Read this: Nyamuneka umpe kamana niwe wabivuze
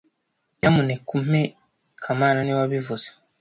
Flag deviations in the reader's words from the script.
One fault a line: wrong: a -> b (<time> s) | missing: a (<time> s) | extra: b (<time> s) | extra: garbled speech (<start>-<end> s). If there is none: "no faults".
no faults